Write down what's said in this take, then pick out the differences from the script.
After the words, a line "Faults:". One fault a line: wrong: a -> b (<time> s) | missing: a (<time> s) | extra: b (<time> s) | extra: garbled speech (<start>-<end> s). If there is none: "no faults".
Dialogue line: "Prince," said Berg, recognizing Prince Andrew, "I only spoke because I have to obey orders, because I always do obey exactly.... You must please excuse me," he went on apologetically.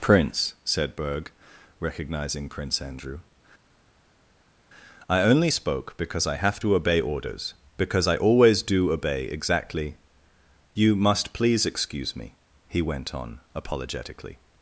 "Prince," said Berg, recognizing Prince Andrew, "I only spoke because I have to obey orders, because I always do obey exactly.... You must please excuse me," he went on apologetically.
Faults:
no faults